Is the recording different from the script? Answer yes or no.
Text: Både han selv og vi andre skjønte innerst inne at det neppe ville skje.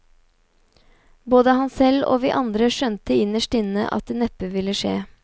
no